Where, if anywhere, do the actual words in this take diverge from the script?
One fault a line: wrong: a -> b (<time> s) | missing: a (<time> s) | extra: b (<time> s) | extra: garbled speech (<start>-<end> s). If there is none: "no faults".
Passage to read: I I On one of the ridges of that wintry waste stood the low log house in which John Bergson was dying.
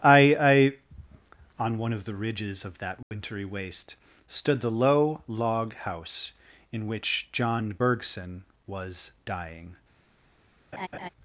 no faults